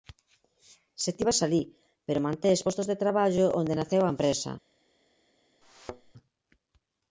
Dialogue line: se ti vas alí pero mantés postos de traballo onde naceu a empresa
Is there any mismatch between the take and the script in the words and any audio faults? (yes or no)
yes